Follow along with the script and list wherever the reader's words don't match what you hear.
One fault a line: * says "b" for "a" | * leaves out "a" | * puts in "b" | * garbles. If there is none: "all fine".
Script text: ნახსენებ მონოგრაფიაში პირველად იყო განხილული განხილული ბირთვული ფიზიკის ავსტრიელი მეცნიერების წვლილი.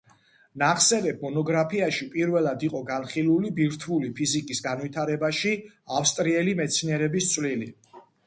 * leaves out "განხილული"
* puts in "განვითარებაში"